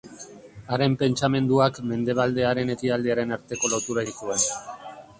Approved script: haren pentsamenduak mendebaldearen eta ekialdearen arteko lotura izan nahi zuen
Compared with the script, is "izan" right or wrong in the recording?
wrong